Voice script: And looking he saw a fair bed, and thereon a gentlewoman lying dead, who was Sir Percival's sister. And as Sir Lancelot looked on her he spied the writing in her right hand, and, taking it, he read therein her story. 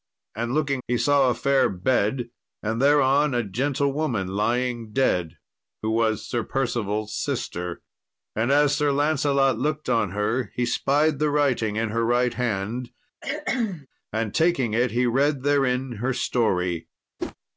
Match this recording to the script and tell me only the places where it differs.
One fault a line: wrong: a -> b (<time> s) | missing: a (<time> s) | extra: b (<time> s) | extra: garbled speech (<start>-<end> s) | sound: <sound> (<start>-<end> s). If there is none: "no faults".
sound: cough (13.2-13.9 s)
sound: whoosh (17.2-17.4 s)